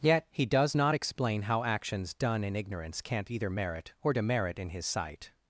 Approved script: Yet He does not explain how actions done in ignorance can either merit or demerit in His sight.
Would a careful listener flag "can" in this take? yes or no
yes